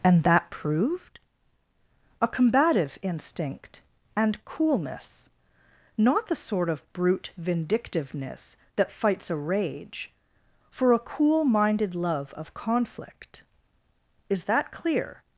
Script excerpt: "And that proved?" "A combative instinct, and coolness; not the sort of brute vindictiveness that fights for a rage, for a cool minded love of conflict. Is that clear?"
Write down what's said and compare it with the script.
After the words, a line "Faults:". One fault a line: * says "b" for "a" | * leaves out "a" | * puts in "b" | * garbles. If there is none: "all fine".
"And that proved?" "A combative instinct, and coolness; not the sort of brute vindictiveness that fights a rage, for a cool minded love of conflict. Is that clear?"
Faults:
* leaves out "for"